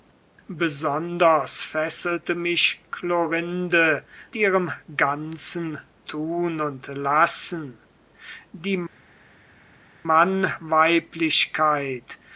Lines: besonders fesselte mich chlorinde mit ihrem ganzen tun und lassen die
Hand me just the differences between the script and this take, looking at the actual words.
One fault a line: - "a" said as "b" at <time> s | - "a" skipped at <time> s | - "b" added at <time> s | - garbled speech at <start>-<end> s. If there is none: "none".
- "mit" skipped at 4.1 s